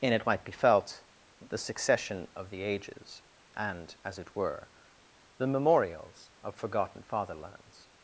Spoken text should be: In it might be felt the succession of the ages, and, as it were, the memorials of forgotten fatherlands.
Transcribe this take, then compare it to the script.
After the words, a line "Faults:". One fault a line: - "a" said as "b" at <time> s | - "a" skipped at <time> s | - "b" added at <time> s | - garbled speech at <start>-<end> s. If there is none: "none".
In it might be felt the succession of the ages, and, as it were, the memorials of forgotten fatherlands.
Faults:
none